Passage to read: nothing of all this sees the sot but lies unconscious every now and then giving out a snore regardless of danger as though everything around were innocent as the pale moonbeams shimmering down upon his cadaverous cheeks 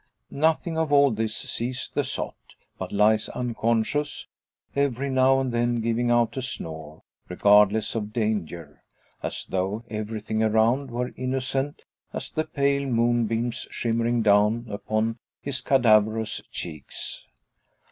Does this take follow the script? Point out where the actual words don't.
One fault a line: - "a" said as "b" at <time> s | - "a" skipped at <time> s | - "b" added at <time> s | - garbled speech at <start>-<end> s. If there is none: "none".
none